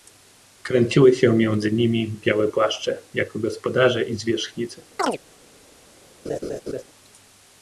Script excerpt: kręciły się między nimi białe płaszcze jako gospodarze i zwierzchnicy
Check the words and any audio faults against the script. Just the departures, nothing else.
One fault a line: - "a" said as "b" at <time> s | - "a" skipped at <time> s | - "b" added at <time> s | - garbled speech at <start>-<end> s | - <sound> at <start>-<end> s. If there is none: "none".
- chirp at 5.0-5.2 s
- laugh at 6.3-6.8 s